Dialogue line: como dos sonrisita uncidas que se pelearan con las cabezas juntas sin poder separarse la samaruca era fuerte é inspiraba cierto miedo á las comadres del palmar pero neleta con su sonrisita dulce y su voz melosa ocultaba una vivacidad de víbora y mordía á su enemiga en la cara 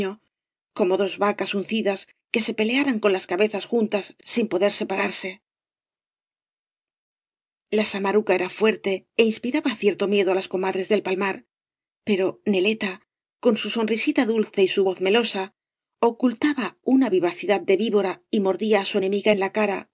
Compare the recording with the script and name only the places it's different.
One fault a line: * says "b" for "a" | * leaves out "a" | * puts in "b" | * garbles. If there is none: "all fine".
* says "vacas" for "sonrisita"